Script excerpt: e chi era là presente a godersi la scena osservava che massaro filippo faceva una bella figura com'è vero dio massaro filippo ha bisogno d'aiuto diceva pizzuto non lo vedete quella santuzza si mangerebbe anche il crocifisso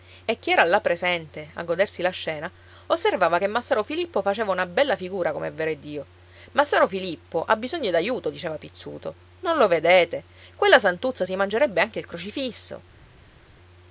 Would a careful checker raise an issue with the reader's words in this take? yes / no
no